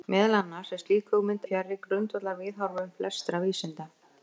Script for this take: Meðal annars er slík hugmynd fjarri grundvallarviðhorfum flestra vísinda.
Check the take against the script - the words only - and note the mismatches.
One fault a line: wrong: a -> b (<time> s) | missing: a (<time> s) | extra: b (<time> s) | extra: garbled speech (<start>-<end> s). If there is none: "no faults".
no faults